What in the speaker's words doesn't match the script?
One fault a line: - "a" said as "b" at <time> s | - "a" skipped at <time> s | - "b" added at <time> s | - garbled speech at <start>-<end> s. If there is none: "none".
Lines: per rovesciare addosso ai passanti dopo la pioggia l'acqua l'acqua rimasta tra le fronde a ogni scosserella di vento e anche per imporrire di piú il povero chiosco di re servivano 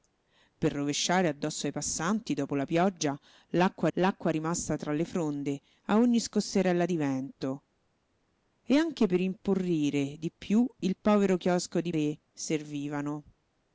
none